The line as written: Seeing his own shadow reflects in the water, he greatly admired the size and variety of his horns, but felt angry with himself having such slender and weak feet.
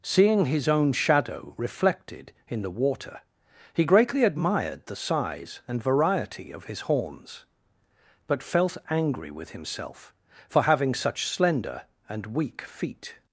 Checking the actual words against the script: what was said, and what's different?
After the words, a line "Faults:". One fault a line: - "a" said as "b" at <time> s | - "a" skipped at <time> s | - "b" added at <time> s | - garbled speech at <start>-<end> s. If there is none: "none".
Seeing his own shadow reflected in the water, he greatly admired the size and variety of his horns, but felt angry with himself for having such slender and weak feet.
Faults:
- "reflects" said as "reflected" at 1.6 s
- "for" added at 10.5 s